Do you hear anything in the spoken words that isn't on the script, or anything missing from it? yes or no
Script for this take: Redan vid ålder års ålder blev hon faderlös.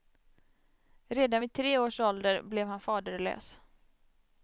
yes